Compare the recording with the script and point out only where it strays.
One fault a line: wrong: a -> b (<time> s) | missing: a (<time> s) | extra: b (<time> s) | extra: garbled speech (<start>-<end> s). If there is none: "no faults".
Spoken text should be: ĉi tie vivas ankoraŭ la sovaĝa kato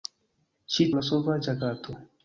missing: tie vivas ankoraŭ (0.9 s)